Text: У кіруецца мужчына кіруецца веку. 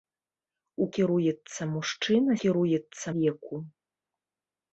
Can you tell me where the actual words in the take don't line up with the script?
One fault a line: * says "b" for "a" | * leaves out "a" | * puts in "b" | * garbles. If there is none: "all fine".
all fine